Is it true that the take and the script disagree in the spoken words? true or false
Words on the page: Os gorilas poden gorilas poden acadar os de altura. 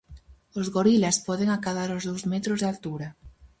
true